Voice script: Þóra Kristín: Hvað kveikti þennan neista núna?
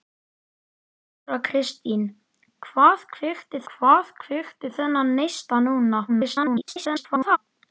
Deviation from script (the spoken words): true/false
true